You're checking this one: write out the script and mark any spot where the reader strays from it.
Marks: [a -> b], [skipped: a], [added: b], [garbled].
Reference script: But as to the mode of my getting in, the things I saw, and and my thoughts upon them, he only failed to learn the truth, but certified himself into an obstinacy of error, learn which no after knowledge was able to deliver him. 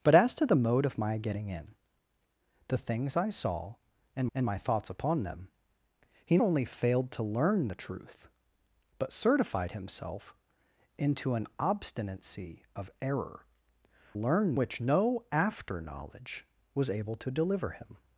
But as to the mode of my getting in, the things I saw, and and my thoughts upon them, he only failed to learn the truth, but certified himself into an obstinacy of error, learn which no after knowledge was able to deliver him.